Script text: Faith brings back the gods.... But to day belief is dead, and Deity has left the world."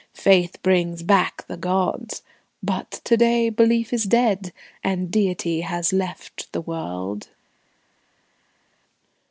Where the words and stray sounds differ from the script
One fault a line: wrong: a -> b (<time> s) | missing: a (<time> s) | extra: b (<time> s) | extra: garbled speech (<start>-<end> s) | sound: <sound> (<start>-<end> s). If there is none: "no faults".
no faults